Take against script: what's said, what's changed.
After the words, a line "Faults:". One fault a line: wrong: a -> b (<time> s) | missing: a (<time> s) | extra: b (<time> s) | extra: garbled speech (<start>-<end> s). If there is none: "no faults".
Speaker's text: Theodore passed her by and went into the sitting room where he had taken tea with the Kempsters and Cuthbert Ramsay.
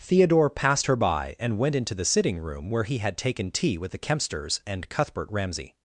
Theodore passed her by and went into the sitting room where he had taken tea with the Kempsters and Cuthbert Ramsay.
Faults:
no faults